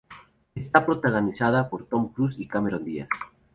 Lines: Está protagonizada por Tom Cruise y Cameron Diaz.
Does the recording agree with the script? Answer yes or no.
yes